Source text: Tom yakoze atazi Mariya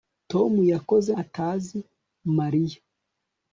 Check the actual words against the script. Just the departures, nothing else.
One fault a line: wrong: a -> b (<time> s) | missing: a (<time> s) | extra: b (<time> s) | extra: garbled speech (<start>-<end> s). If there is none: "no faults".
no faults